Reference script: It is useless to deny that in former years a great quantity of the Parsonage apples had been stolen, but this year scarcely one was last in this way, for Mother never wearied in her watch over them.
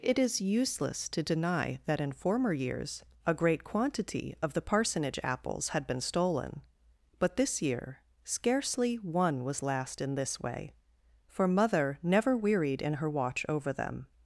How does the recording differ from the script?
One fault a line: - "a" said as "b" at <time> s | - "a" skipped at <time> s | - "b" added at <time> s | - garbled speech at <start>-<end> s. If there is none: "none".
none